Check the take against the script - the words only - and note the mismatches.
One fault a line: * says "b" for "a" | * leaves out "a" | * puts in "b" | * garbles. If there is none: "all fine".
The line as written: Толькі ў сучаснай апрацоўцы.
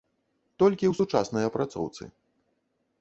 all fine